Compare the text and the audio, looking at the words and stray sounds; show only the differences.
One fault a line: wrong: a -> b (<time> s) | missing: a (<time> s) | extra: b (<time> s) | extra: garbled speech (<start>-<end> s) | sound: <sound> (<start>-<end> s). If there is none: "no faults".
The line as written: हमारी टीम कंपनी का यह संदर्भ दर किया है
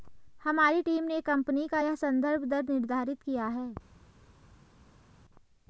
extra: ने (1.0 s)
extra: निर्धारित (2.6 s)